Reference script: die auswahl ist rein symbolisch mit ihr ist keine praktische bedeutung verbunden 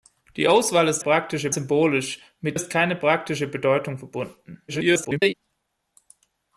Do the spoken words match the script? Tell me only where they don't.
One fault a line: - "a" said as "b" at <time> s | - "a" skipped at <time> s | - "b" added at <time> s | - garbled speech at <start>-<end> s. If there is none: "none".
- "rein" said as "praktische" at 1.0 s
- "ihr" skipped at 2.6 s
- garbled speech at 4.7-5.3 s